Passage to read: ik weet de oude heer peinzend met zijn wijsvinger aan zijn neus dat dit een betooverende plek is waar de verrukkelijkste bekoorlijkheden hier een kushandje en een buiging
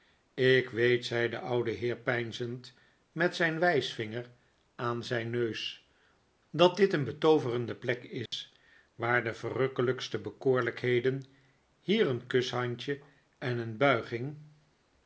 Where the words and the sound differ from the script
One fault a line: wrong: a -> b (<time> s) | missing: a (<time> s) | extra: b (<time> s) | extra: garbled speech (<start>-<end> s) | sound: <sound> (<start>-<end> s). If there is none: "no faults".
extra: zei (1.1 s)
sound: dropout (8.3-8.3 s)